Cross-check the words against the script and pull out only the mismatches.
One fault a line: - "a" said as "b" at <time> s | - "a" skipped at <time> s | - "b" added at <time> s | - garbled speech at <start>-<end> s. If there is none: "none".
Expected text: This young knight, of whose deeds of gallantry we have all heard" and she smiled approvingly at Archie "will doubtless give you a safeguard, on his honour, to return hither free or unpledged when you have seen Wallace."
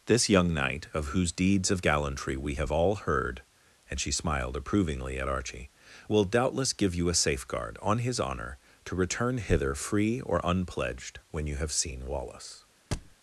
none